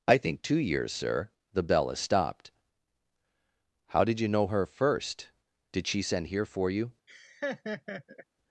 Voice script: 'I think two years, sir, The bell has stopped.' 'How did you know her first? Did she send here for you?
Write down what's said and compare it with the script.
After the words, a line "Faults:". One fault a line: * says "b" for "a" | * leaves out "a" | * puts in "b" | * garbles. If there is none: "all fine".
'I think two years, sir, The bell has stopped.' 'How did you know her first? Did she send here for you?
Faults:
all fine